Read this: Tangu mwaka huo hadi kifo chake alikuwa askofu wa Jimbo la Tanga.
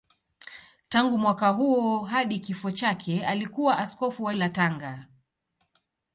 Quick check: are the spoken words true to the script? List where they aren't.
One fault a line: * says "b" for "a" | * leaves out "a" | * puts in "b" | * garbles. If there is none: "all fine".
* leaves out "Jimbo"